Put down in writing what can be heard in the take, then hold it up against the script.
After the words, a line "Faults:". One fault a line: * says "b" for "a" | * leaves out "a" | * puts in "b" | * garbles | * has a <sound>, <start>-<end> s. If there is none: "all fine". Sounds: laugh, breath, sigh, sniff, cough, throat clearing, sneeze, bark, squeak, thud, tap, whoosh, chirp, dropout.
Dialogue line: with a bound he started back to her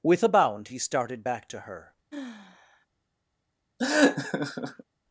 with a bound he started back to her
Faults:
* has a sigh, 2.1-2.9 s
* has a laugh, 3.8-4.8 s